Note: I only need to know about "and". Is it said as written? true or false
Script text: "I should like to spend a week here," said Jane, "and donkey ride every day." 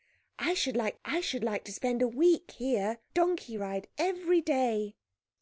false